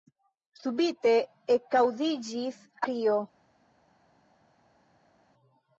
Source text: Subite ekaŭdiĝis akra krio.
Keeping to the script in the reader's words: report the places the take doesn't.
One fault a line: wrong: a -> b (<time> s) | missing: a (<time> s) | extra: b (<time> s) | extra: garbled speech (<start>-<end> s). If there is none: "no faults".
missing: akra (2.6 s)